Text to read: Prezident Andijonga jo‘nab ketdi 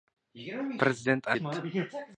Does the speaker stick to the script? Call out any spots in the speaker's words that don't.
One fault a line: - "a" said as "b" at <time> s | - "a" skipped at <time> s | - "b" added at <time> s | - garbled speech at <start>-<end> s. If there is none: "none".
- "Andijonga jo‘nab" skipped at 1.3 s